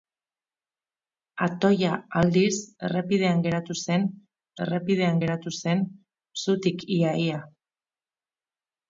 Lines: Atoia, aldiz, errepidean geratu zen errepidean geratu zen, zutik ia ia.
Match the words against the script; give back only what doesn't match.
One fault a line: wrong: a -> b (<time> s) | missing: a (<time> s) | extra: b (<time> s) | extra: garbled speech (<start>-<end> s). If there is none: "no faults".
no faults